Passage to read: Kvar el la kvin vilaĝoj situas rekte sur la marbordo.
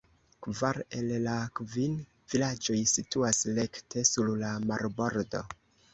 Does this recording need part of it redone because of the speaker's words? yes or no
no